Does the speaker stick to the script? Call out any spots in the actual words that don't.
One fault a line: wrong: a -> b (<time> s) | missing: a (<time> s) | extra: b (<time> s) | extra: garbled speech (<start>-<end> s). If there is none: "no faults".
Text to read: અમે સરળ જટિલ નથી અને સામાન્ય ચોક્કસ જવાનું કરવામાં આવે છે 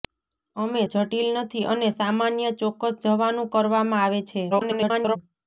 missing: સરળ (0.8 s)
extra: garbled speech (4.5-5.2 s)